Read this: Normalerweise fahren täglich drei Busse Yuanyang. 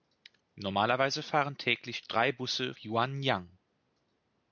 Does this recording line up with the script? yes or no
yes